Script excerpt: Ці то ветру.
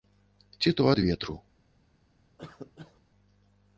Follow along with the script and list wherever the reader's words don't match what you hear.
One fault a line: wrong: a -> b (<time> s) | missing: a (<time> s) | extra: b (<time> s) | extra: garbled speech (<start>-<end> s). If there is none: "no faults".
extra: ад (0.9 s)